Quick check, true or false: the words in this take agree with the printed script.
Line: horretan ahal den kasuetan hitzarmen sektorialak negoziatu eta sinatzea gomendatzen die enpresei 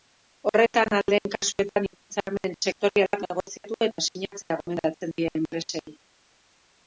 true